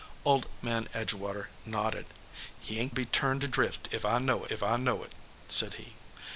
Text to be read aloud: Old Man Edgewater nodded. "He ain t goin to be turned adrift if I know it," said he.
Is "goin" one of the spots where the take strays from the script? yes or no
yes